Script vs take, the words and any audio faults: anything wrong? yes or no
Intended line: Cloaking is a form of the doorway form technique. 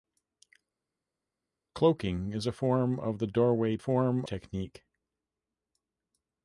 no